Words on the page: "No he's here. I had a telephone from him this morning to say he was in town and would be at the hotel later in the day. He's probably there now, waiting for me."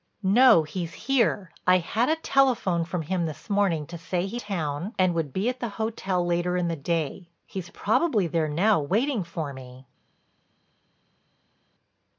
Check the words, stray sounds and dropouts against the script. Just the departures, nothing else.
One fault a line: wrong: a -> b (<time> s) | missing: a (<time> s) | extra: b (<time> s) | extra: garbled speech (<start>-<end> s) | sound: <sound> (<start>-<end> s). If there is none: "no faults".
missing: was in (4.4 s)